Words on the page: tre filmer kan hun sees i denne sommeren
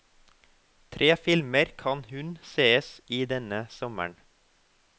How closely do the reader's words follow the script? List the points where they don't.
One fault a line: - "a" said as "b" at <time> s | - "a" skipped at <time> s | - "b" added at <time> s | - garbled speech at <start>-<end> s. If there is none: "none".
none